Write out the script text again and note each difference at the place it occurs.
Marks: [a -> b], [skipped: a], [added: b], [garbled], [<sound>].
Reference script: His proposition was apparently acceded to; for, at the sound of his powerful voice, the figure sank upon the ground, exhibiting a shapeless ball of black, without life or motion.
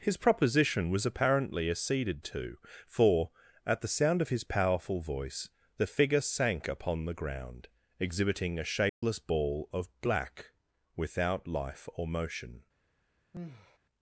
His proposition was apparently acceded to; for, at the sound of his powerful voice, the figure sank upon the ground, exhibiting a shapeless [dropout] ball of black, without life or motion. [sigh]